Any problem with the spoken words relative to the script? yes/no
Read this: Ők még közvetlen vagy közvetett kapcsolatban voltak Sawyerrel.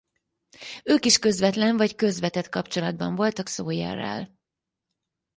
yes